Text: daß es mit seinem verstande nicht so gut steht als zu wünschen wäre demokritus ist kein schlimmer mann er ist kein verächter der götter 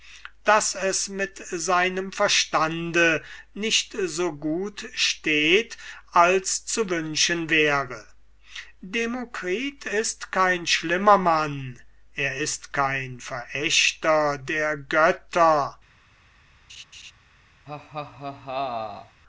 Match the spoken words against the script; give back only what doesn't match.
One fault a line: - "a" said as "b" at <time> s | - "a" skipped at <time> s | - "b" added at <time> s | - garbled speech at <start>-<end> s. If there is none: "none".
none